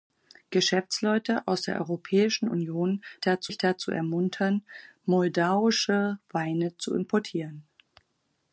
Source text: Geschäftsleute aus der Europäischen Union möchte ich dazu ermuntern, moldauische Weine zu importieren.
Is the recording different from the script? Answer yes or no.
yes